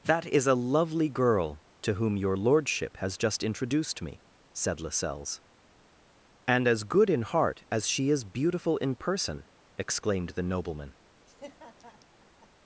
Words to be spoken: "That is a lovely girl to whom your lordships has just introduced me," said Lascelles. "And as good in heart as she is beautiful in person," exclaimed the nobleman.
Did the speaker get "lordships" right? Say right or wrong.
wrong